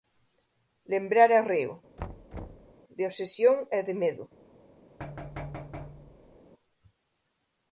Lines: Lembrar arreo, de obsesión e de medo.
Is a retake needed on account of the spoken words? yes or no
no